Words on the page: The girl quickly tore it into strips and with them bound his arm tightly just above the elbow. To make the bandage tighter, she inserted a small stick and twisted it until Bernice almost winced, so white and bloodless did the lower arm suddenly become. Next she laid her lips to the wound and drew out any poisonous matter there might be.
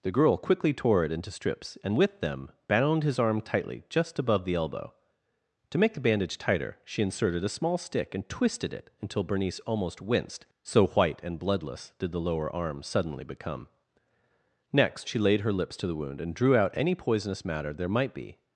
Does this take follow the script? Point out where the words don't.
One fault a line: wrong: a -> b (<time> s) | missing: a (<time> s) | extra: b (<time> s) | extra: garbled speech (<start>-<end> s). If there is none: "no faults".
no faults